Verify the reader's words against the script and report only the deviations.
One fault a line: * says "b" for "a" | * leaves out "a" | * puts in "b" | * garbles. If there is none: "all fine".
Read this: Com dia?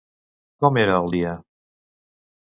* puts in "era el"